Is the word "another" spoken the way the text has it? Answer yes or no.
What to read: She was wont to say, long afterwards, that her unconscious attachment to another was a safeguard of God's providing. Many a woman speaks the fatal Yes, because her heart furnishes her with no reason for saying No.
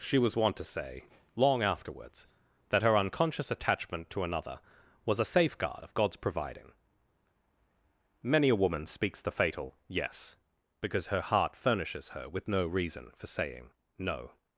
yes